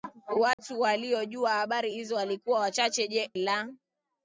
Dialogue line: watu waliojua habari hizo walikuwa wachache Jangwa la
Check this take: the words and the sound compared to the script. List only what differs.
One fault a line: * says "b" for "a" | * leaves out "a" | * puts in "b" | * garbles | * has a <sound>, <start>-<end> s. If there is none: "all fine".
* has a dropout, 0.5-0.6 s
* leaves out "Jangwa"